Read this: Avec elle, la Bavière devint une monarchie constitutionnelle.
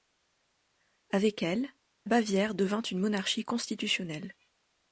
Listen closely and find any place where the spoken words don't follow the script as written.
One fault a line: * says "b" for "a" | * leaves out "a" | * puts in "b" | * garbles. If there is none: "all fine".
* leaves out "la"